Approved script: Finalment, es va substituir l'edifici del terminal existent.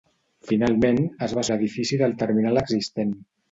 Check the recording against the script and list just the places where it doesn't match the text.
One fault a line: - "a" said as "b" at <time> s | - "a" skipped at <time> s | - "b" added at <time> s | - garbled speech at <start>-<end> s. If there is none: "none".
- "substituir" skipped at 1.4 s